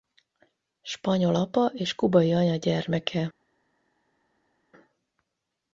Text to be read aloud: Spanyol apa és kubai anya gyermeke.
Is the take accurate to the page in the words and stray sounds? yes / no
yes